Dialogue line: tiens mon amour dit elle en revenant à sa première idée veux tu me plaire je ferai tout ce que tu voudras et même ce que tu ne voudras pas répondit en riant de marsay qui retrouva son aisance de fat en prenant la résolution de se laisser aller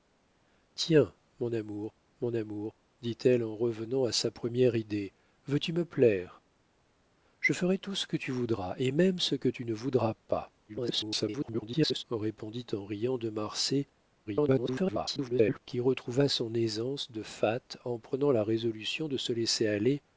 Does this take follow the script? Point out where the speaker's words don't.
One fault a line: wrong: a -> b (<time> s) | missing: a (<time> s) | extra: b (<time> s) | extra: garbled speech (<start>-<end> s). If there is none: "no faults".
extra: mon amour (2.2 s)
extra: garbled speech (10.7-12.0 s)
extra: garbled speech (14.3-15.6 s)